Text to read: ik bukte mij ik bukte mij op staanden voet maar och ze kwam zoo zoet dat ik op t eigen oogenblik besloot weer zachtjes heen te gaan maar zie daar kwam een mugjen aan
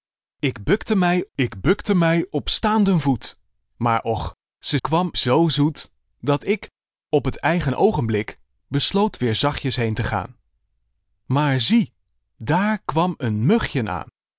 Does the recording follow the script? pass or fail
pass